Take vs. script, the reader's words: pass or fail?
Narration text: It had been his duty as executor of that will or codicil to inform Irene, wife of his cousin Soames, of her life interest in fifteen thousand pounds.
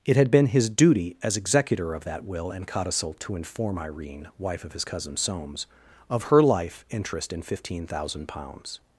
fail